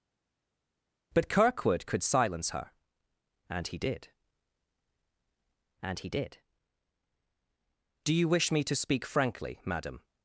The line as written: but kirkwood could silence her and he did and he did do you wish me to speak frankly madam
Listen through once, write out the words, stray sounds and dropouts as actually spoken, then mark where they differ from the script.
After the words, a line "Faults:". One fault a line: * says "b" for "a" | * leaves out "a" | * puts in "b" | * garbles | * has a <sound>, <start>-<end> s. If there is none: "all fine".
but kirkwood could silence her and he did and he did do you wish me to speak frankly madam
Faults:
all fine